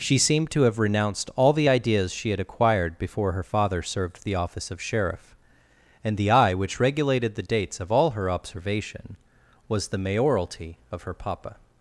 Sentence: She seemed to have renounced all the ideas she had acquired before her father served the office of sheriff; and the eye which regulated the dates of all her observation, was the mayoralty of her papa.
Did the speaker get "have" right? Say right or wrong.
right